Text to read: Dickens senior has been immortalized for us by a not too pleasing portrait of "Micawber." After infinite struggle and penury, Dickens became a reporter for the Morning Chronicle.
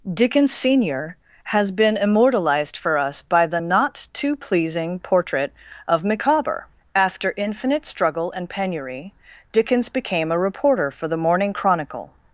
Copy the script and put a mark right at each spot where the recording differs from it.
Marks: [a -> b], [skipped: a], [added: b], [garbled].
Dickens senior has been immortalized for us by [a -> the] not too pleasing portrait of "Micawber." After infinite struggle and penury, Dickens became a reporter for the Morning Chronicle.